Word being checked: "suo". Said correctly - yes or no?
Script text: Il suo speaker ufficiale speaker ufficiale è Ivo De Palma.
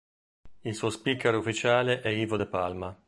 yes